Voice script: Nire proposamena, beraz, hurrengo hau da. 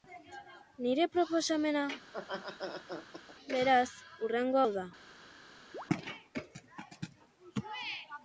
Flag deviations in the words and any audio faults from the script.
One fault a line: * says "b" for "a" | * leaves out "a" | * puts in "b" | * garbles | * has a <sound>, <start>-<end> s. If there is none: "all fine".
* has a laugh, 2.0-3.4 s
* has a chirp, 5.7-5.9 s